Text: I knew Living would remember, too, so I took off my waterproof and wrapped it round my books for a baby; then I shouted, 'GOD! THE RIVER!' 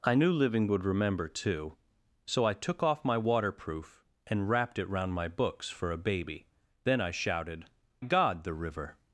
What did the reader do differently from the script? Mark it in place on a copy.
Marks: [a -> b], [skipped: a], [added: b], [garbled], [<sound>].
I knew Living would remember, too, so I took off my waterproof and wrapped it round my books for a baby; then I shouted, 'GOD! THE RIVER!'